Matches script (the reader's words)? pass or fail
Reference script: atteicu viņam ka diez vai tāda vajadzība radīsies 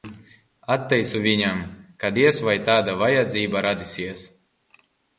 pass